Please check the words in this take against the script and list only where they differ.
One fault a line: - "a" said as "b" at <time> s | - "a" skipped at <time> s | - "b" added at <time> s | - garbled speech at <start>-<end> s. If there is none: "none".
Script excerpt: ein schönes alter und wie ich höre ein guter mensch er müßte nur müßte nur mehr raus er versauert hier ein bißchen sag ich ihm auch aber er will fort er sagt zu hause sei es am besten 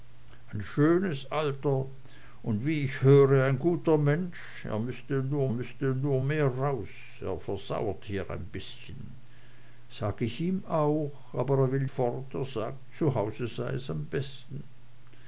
none